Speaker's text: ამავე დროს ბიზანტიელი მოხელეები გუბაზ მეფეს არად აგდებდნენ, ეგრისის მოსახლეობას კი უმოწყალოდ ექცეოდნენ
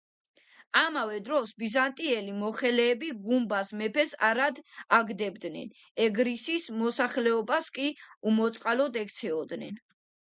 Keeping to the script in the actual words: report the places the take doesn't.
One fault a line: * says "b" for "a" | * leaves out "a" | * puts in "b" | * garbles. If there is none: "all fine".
all fine